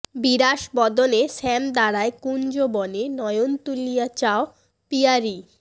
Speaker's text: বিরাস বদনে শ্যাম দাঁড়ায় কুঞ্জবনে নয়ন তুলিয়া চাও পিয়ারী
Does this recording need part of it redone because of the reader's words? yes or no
no